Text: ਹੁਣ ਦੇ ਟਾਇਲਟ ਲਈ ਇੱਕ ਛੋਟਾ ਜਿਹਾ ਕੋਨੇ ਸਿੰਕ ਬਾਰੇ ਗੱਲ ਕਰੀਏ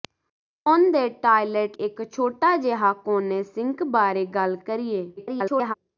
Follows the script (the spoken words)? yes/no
no